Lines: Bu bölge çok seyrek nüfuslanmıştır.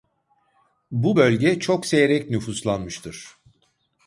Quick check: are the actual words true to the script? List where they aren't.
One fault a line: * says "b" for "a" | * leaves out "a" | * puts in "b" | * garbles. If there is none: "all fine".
all fine